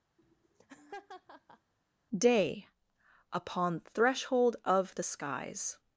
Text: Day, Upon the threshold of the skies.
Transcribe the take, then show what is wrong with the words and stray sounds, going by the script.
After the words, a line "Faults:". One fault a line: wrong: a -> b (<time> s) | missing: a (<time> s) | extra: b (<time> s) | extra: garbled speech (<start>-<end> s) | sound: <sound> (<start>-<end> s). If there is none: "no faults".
Day, Upon threshold of the skies.
Faults:
sound: laugh (0.2-1.7 s)
missing: the (3.8 s)